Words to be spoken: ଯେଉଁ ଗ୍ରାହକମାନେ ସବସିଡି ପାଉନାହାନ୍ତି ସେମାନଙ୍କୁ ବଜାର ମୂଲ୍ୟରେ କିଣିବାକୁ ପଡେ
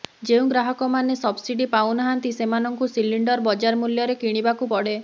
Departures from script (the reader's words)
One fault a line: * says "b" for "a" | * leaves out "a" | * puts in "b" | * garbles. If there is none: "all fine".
* puts in "ସିଲିଣ୍ଡର"